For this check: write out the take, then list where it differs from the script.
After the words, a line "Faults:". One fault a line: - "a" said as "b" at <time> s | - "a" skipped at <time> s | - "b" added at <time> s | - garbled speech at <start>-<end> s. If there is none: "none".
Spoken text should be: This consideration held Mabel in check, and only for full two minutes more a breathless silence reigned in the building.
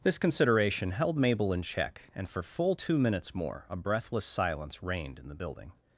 This consideration held Mabel in check, and for full two minutes more a breathless silence reigned in the building.
Faults:
- "only" skipped at 2.3 s